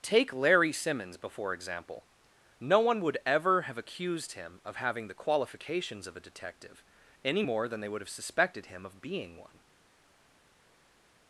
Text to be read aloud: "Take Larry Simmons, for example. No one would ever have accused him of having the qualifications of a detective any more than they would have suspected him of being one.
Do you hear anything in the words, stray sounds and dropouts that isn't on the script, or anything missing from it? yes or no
yes